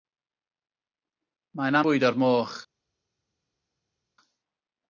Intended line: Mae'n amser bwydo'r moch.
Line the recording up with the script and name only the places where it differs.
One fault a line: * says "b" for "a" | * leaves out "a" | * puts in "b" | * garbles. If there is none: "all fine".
* leaves out "amser"